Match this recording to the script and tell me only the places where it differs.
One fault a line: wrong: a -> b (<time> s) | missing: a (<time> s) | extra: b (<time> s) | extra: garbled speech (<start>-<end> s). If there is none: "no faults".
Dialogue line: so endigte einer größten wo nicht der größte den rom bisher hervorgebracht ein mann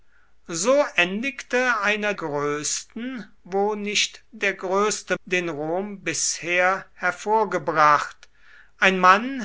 no faults